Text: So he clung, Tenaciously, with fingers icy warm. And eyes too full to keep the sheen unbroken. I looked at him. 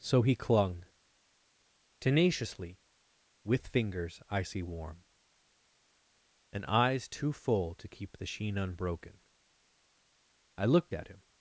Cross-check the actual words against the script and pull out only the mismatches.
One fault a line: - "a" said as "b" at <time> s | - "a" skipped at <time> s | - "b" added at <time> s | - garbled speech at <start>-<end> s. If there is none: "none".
none